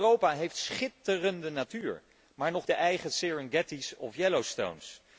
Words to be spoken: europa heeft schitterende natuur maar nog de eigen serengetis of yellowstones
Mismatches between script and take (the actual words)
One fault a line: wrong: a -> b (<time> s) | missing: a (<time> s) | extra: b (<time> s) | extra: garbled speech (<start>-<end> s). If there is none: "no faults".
no faults